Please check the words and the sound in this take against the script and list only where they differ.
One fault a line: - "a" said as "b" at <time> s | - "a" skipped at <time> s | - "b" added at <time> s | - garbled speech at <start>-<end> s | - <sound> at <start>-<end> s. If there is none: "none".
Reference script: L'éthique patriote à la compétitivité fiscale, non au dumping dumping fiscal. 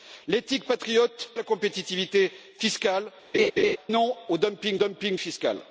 - laugh at 3.3-3.8 s